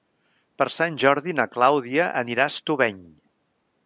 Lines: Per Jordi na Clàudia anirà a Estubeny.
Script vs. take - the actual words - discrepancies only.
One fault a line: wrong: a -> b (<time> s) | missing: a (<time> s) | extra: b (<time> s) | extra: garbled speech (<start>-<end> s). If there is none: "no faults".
extra: Sant (0.8 s)